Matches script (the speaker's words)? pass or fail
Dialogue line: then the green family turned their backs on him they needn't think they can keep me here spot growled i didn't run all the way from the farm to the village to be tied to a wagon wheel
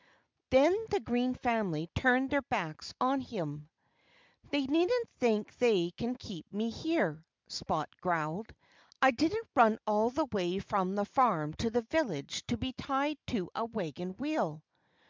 pass